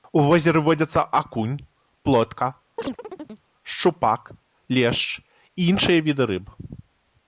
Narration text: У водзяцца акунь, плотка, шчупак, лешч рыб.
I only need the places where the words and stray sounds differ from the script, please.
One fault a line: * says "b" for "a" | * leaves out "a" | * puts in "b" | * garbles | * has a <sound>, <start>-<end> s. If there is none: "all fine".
* puts in "возеры"
* has a chirp, 2.8-3.5 s
* puts in "і іншыя віды"